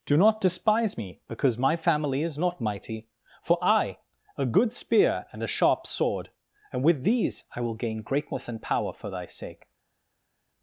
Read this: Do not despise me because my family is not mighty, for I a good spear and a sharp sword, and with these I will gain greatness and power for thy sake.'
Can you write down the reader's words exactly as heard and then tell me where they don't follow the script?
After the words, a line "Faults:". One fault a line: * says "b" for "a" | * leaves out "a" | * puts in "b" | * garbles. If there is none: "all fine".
Do not despise me because my family is not mighty, for I a good spear and a sharp sword, and with these I will gain greatness and power for thy sake.'
Faults:
all fine